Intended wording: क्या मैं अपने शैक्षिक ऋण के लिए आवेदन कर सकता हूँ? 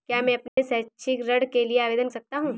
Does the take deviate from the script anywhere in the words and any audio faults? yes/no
yes